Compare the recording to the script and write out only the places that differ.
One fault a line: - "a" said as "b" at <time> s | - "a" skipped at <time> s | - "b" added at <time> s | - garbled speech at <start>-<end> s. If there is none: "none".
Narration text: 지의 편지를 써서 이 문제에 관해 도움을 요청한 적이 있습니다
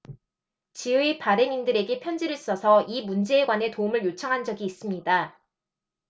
- "발행인들에게" added at 1.2 s